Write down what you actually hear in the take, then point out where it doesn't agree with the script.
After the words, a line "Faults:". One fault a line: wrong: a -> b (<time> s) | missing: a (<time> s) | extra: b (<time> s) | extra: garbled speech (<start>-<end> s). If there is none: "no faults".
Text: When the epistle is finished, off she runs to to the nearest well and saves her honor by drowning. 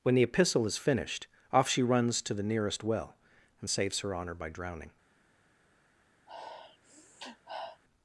When the epistle is finished, off she runs to the nearest well and saves her honor by drowning.
Faults:
missing: to (2.3 s)